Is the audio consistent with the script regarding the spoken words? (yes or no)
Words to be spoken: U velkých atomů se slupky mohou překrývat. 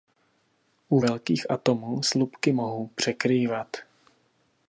no